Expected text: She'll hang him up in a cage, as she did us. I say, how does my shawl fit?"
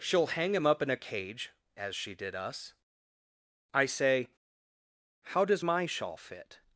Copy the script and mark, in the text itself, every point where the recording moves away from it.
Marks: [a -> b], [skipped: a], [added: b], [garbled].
She'll hang him up in a cage, as she did us. I say, how does my shawl fit?"